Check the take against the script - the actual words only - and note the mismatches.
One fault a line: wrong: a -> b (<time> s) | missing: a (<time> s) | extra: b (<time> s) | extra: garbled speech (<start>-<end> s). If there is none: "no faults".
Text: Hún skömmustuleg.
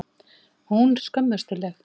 no faults